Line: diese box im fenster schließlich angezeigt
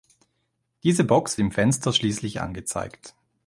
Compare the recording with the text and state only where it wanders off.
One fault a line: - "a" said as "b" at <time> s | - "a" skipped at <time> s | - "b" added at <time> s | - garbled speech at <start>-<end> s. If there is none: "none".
none